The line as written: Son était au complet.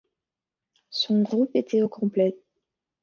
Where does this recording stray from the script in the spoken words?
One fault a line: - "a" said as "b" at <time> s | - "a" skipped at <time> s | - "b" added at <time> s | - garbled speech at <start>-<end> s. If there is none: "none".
- "groupe" added at 1.2 s